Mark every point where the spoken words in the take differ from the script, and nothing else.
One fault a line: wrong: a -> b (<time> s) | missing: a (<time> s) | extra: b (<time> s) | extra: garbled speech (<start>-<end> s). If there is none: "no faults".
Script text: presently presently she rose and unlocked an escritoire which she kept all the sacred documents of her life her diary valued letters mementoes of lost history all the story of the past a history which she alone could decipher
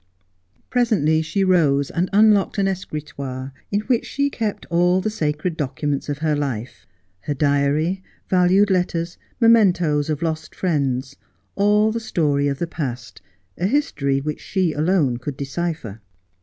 missing: presently (1.2 s)
extra: in (3.7 s)
wrong: history -> friends (10.5 s)